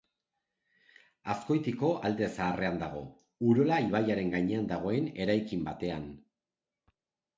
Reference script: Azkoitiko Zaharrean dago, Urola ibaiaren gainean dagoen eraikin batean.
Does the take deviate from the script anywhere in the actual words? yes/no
yes